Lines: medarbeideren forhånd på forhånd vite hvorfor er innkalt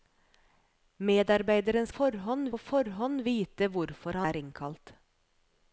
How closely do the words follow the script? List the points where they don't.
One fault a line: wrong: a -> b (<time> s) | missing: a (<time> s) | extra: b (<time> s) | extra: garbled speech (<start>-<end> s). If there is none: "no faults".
no faults